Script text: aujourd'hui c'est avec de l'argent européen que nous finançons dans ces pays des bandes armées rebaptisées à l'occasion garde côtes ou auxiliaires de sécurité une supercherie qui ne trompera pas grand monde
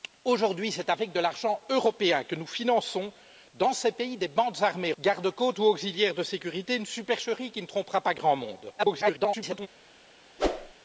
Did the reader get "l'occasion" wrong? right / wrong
wrong